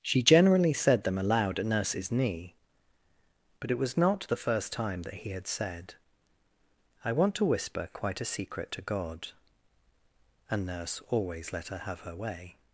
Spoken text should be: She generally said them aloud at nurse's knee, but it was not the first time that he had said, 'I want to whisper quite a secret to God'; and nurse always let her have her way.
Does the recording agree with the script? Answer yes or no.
yes